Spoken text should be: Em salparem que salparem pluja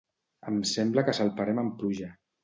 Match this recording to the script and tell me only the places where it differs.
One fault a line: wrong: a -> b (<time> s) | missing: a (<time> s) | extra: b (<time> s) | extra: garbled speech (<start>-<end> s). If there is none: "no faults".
wrong: salparem -> sembla (0.7 s)
extra: amb (1.6 s)